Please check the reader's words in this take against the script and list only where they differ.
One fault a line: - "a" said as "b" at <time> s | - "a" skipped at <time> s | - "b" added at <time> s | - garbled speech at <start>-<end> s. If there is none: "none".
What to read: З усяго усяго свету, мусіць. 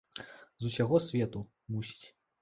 - "усяго" skipped at 1.0 s